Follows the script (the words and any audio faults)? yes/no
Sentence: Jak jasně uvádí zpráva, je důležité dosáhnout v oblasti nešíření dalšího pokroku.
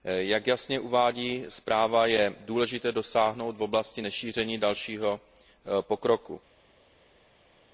yes